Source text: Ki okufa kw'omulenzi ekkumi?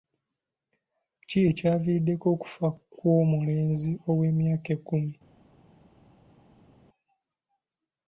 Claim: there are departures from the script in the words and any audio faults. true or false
true